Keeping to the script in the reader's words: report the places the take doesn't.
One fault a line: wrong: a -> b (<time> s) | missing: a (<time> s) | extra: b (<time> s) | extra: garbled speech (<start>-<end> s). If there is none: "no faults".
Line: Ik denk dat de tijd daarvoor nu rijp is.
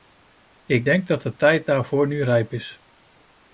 no faults